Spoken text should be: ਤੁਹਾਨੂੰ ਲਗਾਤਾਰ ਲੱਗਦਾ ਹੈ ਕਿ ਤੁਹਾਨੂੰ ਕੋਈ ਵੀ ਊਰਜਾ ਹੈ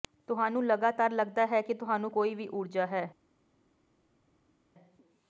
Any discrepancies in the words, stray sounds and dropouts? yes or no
no